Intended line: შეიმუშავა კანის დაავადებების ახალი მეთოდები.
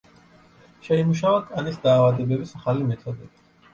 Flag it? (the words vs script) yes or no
no